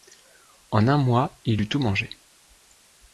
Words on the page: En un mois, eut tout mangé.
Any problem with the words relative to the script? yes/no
yes